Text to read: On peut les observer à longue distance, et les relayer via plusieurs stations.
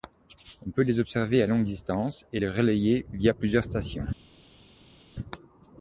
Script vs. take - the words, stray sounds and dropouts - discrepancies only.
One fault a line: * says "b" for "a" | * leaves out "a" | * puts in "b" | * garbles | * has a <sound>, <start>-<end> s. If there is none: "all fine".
all fine